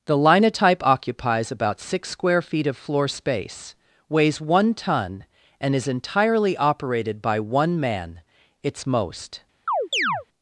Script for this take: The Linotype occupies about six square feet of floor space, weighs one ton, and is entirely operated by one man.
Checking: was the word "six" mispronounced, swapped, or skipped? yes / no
no